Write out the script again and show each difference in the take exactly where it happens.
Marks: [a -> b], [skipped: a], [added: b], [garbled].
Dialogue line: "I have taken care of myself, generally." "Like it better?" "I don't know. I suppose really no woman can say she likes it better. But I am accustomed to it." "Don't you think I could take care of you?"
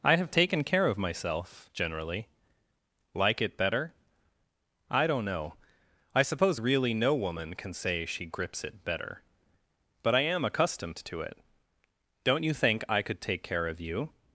"I have taken care of myself, generally." "Like it better?" "I don't know. I suppose really no woman can say she [likes -> grips] it better. But I am accustomed to it." "Don't you think I could take care of you?"